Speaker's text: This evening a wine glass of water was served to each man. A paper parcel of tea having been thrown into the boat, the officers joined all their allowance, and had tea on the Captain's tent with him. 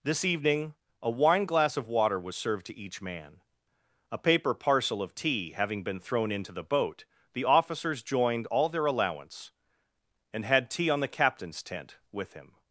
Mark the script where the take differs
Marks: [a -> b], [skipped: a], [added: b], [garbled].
This evening a wine glass of water was served to each man. A paper parcel of tea having been thrown into the boat, the officers joined all their allowance, and had tea on the Captain's tent with him.